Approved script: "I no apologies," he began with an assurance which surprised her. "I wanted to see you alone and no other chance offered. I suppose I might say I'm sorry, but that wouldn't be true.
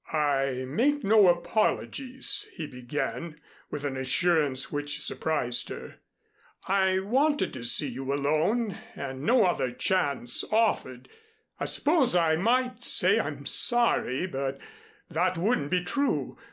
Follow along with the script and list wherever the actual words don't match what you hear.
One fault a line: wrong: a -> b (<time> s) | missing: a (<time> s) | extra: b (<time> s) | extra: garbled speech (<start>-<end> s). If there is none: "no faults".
extra: make (0.7 s)